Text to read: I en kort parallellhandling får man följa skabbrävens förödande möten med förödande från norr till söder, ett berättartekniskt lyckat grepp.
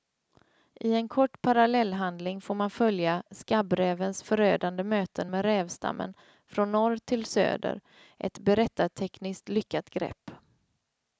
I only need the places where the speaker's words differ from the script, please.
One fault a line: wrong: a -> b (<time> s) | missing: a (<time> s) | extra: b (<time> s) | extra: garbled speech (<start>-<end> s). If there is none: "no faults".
wrong: förödande -> rävstammen (5.5 s)